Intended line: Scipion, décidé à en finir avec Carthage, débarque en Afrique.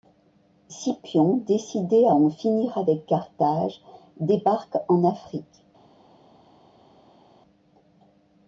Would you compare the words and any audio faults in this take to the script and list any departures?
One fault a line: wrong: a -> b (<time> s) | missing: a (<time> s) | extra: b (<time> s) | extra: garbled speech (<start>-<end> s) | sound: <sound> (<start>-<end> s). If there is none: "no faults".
no faults